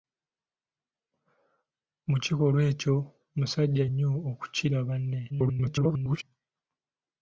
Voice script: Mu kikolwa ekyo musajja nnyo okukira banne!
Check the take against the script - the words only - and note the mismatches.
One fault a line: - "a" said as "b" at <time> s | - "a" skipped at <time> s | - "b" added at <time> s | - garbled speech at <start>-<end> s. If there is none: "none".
- garbled speech at 5.3-6.2 s